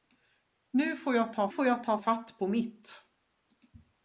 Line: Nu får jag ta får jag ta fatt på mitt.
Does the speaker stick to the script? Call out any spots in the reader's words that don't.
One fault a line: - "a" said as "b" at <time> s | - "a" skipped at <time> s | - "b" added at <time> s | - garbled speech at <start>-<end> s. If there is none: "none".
none